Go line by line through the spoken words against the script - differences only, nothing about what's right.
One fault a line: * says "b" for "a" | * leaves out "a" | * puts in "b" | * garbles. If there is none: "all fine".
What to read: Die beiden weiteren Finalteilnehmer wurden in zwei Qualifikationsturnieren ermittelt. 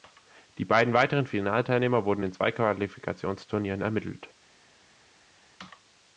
all fine